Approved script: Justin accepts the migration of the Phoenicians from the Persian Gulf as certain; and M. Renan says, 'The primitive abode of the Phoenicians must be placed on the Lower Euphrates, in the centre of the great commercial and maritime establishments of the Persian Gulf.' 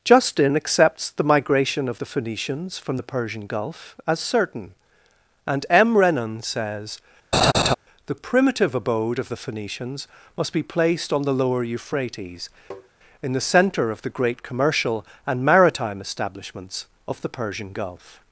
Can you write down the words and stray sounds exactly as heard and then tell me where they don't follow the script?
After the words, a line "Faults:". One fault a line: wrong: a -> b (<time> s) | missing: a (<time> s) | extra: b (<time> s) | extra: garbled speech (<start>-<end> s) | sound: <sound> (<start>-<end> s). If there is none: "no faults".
Justin accepts the migration of the Phoenicians from the Persian Gulf as certain; and M. Renan says, 'The primitive abode of the Phoenicians must be placed on the Lower Euphrates, in the centre of the great commercial and maritime establishments of the Persian Gulf.'
Faults:
sound: laugh (7.3-7.7 s)
sound: tap (12.7-12.9 s)